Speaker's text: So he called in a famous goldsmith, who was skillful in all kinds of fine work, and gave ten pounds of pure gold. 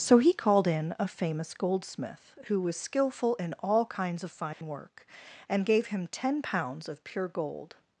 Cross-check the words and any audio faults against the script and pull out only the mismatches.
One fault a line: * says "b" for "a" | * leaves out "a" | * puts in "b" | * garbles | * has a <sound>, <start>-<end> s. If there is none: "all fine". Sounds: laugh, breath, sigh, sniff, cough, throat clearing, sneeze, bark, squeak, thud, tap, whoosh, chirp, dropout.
* has a dropout, 4.5-4.6 s
* puts in "him"